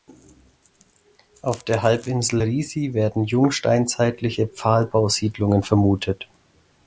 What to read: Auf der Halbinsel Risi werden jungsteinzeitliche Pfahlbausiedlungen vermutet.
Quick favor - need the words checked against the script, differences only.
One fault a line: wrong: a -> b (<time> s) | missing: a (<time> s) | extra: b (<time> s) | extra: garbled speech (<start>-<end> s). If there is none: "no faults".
no faults